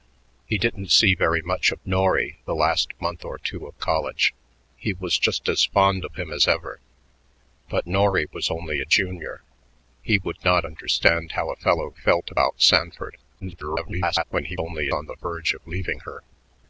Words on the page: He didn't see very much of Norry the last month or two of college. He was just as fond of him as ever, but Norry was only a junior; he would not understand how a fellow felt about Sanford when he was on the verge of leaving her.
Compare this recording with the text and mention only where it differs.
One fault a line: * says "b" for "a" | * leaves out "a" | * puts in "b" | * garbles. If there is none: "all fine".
* garbles
* says "only" for "was"